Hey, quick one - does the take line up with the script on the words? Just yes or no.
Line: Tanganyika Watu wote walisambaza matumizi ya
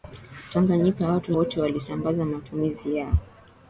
yes